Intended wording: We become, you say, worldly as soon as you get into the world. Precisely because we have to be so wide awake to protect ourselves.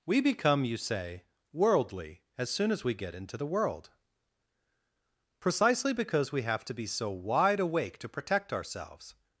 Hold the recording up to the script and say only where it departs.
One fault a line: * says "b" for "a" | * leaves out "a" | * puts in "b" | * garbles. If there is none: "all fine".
* says "we" for "you"